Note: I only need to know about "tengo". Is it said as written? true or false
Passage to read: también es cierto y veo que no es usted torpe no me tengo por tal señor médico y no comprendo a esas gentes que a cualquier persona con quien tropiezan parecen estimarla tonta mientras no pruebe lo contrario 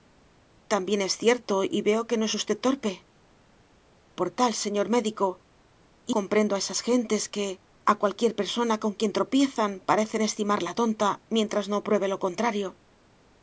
false